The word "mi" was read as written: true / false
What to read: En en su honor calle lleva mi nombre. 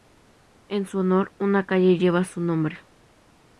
false